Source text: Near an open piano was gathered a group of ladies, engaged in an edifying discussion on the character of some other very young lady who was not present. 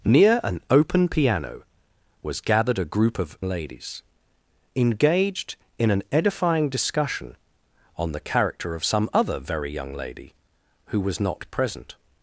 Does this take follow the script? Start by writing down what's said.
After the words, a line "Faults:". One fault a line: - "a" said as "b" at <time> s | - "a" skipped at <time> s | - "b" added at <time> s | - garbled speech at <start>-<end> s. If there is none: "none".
Near an open piano was gathered a group of ladies, engaged in an edifying discussion on the character of some other very young lady who was not present.
Faults:
none